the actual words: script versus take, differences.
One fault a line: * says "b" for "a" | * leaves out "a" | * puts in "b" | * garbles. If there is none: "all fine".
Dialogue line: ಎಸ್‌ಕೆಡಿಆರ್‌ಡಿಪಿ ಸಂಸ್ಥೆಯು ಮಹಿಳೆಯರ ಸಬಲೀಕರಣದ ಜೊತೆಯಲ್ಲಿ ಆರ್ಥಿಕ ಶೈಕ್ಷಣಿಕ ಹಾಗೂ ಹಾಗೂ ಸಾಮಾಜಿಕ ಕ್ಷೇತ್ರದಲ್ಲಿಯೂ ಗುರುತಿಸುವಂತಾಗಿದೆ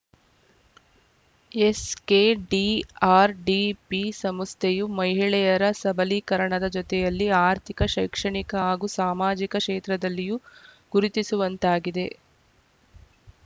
* leaves out "ಹಾಗೂ"